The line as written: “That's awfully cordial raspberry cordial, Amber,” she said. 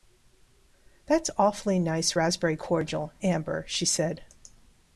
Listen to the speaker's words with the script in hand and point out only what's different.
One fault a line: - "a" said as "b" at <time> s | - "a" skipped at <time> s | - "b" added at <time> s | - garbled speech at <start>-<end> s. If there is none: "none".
- "cordial" said as "nice" at 1.8 s